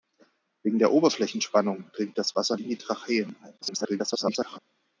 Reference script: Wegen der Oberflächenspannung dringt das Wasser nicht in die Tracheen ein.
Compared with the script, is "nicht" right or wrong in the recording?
wrong